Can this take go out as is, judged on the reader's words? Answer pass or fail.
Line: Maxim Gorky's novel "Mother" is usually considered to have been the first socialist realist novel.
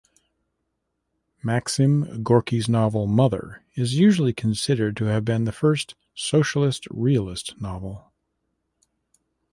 pass